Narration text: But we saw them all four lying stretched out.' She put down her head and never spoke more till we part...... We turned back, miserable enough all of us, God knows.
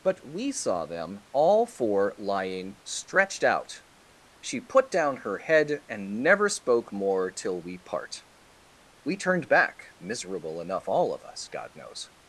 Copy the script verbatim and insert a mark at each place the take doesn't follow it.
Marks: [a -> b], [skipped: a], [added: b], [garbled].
But we saw them all four lying stretched out.' She put down her head and never spoke more till we part...... We turned back, miserable enough all of us, God knows.